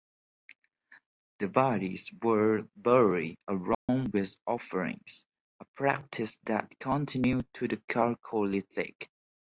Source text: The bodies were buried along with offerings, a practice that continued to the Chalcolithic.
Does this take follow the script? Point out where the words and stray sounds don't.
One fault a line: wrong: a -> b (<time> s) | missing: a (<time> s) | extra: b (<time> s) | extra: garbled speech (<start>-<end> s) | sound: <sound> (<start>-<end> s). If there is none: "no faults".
sound: dropout (3.7-3.9 s)